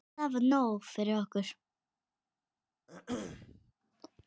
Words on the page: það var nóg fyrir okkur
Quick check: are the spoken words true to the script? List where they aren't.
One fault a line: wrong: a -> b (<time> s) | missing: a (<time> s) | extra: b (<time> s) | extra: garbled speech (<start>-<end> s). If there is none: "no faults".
no faults